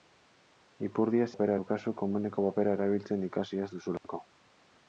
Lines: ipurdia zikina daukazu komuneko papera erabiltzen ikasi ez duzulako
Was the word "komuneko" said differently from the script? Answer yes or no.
no